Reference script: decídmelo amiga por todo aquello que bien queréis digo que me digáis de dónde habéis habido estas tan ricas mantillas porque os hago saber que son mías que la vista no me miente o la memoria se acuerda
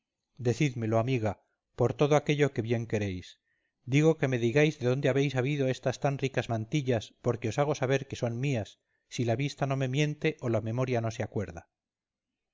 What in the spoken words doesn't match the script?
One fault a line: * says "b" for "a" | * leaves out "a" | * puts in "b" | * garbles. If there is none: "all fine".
* says "si" for "que"
* puts in "no"